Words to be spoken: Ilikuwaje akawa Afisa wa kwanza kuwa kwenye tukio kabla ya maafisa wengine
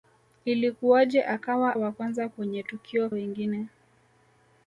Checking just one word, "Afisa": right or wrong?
wrong